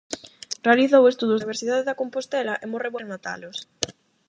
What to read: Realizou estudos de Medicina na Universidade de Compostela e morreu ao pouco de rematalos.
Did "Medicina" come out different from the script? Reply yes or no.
yes